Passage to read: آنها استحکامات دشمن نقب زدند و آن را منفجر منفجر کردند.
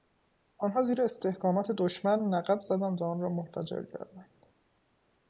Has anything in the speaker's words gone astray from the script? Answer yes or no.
yes